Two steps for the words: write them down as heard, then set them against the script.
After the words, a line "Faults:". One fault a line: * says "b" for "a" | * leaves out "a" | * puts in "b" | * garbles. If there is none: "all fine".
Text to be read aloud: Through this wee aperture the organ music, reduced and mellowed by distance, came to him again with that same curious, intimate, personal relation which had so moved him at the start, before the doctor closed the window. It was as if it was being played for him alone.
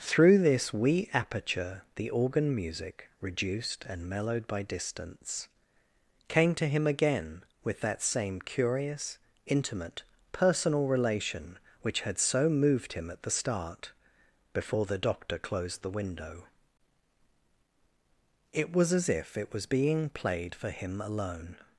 Through this wee aperture the organ music, reduced and mellowed by distance, came to him again with that same curious, intimate, personal relation which had so moved him at the start, before the doctor closed the window. It was as if it was being played for him alone.
Faults:
all fine